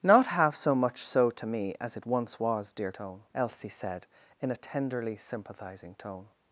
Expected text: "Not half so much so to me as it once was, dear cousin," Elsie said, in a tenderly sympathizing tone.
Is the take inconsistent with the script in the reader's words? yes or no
yes